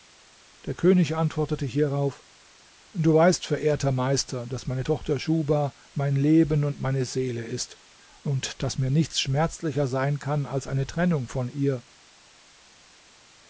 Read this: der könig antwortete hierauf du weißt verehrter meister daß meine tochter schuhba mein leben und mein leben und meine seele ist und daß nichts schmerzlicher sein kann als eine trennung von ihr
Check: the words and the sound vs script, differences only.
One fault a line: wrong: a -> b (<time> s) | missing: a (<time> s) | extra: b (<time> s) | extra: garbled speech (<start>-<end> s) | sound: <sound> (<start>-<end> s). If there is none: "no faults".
missing: mein leben und (6.8 s)
extra: mir (8.8 s)